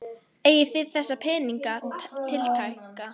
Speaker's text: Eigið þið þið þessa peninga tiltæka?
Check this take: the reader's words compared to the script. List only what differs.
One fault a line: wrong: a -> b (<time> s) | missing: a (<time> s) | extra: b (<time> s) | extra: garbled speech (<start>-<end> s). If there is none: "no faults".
missing: þið (0.9 s)